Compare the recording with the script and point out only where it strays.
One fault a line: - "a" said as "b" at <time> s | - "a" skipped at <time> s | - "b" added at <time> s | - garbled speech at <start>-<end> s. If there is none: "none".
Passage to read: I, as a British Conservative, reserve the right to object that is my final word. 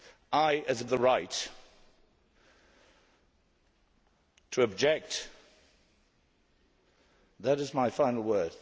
- "British Conservative reserve" skipped at 0.8 s